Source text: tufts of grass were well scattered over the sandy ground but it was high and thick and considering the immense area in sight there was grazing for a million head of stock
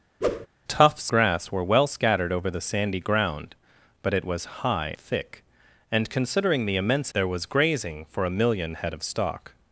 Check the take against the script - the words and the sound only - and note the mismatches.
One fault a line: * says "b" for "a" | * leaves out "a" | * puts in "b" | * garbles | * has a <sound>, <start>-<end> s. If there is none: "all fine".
* has a whoosh, 0.2-0.5 s
* leaves out "of"
* leaves out "and"
* leaves out "area in sight"